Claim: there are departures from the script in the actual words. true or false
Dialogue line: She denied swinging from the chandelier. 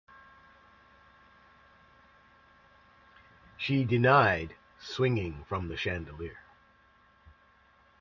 false